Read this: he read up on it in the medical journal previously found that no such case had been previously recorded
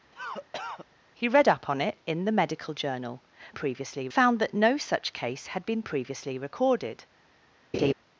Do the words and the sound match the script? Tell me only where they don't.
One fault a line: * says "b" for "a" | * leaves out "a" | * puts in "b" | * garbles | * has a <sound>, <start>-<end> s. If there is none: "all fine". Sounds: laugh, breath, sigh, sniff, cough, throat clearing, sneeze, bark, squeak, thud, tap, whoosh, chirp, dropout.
* has a cough, 0.1-0.9 s
* has a laugh, 7.7-7.9 s